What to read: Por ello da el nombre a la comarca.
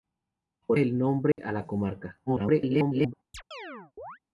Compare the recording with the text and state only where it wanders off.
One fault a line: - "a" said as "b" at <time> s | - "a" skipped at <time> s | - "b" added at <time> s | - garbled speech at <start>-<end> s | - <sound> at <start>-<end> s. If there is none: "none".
- "ello da" skipped at 0.8 s
- dropout at 1.3-1.4 s
- garbled speech at 2.3-3.1 s
- chirp at 3.3-4.2 s